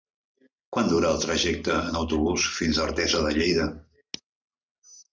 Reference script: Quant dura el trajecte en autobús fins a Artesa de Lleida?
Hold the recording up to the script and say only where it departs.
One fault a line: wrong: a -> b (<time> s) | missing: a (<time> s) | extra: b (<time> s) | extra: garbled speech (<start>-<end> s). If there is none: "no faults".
no faults